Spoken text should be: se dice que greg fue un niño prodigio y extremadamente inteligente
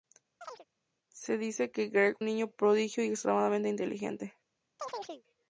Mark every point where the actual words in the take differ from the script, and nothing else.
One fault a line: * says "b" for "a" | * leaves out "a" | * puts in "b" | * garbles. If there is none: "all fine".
* leaves out "fue"